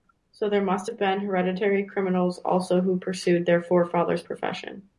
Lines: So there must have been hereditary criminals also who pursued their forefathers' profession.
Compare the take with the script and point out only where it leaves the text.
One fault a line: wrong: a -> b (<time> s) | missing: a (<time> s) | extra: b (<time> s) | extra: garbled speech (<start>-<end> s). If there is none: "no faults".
no faults